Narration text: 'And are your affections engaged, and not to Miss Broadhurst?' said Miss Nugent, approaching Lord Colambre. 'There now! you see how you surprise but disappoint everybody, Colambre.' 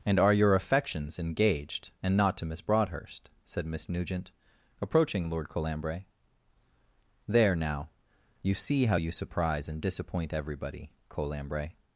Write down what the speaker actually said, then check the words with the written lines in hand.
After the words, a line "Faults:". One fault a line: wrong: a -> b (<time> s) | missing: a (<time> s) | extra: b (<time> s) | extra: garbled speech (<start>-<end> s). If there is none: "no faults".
'And are your affections engaged, and not to Miss Broadhurst?' said Miss Nugent, approaching Lord Colambre. 'There now! you see how you surprise and disappoint everybody, Colambre.'
Faults:
wrong: but -> and (9.7 s)